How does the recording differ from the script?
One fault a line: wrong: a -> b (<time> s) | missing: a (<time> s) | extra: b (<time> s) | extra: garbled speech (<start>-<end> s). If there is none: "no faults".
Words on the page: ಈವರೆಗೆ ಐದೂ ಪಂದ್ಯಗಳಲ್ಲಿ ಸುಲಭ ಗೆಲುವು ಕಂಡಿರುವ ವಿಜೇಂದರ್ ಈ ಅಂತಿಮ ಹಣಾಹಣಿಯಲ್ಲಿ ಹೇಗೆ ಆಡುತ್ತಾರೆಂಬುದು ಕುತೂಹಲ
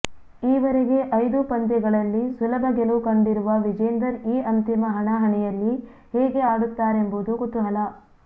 no faults